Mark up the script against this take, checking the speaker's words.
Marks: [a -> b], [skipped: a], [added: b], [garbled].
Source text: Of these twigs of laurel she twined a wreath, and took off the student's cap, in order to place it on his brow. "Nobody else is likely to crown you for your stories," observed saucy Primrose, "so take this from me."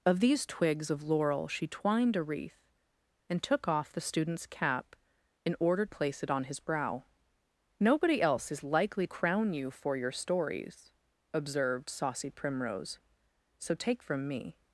Of these twigs of laurel she twined a wreath, and took off the student's cap, in order [skipped: to] place it on his brow. "Nobody else is likely [skipped: to] crown you for your stories," observed saucy Primrose, "so take [skipped: this] from me."